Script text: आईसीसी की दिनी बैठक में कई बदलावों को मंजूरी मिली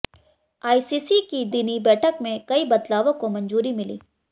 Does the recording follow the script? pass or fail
pass